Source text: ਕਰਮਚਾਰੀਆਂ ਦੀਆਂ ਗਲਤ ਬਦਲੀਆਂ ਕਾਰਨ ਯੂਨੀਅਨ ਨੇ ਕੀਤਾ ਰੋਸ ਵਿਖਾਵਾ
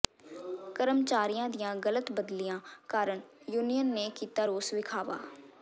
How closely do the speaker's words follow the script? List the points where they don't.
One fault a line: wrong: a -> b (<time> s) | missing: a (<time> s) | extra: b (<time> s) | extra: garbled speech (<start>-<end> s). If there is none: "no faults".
no faults